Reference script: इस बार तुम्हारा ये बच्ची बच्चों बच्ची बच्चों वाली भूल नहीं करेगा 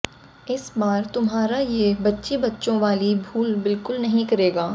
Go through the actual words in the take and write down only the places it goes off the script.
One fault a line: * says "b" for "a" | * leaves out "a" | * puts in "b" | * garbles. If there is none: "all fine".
* leaves out "बच्ची बच्चों"
* puts in "बिल्कुल"